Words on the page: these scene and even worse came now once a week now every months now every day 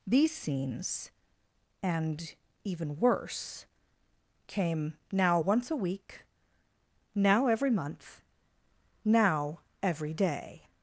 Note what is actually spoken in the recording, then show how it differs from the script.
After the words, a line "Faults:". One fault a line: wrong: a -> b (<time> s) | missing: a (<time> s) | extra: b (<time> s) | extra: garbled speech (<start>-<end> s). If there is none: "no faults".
these scenes and even worse came now once a week now every month now every day
Faults:
wrong: scene -> scenes (0.3 s)
wrong: months -> month (7.7 s)